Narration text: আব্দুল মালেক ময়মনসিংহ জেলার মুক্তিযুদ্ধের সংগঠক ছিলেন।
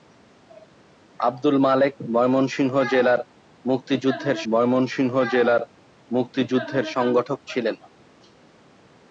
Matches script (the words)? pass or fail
fail